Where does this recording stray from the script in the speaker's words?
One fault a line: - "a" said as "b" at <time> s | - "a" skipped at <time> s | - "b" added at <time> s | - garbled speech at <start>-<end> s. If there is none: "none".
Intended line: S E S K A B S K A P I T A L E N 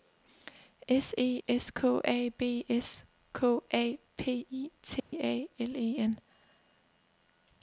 none